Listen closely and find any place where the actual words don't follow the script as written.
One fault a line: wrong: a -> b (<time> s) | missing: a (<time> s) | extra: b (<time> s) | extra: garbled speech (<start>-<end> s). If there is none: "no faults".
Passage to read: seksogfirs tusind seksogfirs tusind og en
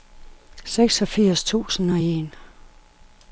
missing: seksogfirs tusind (1.9 s)